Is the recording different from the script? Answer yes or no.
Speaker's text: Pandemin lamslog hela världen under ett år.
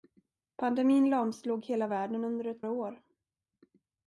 no